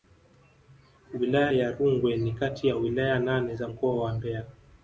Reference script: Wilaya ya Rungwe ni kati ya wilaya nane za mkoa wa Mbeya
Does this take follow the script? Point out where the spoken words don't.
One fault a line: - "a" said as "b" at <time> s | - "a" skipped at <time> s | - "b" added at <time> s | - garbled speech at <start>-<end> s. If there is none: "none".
none